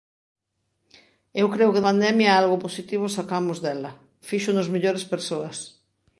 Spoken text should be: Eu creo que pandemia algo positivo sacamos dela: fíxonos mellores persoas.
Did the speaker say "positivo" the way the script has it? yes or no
yes